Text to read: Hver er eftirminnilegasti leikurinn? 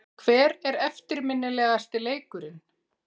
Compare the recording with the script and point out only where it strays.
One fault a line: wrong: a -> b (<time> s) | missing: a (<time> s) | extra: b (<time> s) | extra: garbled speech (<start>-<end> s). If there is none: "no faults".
no faults